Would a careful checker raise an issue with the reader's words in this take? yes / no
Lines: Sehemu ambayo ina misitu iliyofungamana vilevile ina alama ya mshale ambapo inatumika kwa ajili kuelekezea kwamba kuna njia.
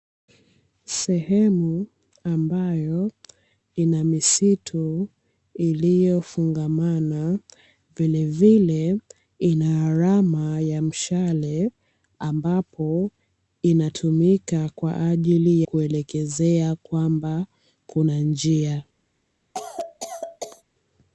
no